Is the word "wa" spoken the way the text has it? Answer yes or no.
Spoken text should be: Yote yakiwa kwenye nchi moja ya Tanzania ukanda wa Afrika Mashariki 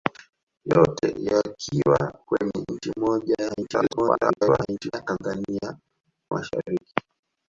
no